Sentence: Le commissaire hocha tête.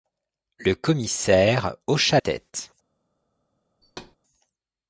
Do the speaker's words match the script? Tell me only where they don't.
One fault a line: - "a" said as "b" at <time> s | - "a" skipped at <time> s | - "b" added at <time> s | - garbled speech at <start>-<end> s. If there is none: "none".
none